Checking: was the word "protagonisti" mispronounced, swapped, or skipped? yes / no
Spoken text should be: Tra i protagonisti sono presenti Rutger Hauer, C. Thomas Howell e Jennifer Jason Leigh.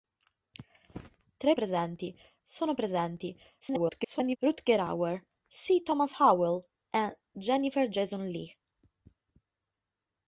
yes